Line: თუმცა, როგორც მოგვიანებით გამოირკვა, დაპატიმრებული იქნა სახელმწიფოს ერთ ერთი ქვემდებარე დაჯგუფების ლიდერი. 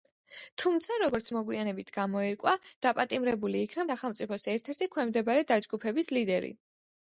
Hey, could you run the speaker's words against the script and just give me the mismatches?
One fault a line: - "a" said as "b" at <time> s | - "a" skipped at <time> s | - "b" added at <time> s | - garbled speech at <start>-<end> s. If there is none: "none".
none